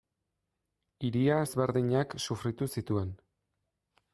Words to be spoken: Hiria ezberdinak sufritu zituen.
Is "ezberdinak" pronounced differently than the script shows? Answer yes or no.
no